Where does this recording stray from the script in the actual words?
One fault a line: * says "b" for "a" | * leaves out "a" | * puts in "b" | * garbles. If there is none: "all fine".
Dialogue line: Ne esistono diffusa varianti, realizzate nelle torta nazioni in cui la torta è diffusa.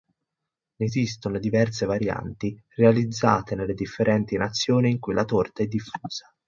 * says "diverse" for "diffusa"
* says "differenti" for "torta"